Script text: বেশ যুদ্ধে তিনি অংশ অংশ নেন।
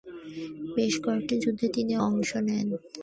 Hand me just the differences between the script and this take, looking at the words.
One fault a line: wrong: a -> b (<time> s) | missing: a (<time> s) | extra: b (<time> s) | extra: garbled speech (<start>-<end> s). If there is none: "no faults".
extra: কয়েকটি (1.0 s)
missing: অংশ (2.3 s)